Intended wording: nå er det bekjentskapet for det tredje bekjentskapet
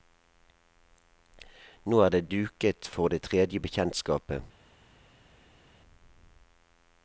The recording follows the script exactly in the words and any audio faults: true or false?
false